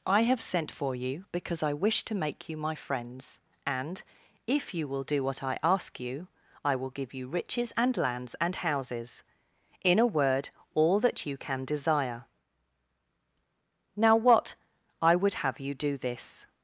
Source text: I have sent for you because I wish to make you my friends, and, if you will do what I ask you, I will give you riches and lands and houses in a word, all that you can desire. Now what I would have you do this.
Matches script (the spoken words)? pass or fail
pass